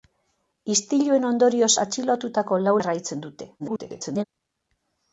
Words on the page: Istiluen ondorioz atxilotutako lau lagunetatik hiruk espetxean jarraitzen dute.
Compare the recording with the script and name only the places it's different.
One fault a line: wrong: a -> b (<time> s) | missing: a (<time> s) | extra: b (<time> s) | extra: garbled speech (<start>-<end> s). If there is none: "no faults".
missing: lagunetatik hiruk espetxean (2.8 s)
extra: garbled speech (3.6-4.2 s)